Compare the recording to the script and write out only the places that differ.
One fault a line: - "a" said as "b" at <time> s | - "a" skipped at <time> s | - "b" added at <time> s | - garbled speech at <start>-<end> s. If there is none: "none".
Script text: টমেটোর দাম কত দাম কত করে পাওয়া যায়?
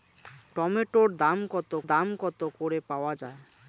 none